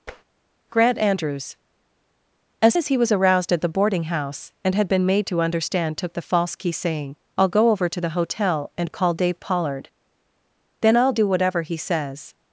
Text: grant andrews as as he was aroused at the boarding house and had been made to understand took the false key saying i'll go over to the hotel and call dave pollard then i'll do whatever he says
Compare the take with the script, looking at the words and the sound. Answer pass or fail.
fail